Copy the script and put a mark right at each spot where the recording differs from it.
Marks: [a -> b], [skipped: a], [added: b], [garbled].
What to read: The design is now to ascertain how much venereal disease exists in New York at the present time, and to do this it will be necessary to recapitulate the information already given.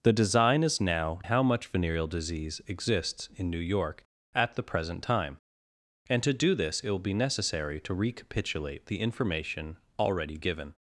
The design is now [skipped: to ascertain] how much venereal disease exists in New York at the present time, and to do this it will be necessary to recapitulate the information already given.